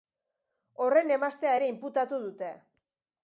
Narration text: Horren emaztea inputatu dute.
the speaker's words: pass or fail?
fail